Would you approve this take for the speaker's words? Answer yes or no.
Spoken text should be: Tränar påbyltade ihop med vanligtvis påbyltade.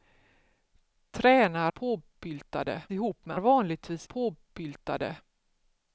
yes